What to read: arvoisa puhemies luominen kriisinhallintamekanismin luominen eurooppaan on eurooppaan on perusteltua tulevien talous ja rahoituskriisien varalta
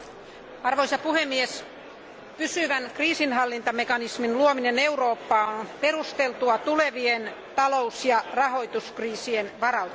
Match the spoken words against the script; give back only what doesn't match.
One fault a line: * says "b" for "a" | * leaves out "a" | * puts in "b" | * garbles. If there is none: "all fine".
* says "pysyvän" for "luominen"
* leaves out "eurooppaan on"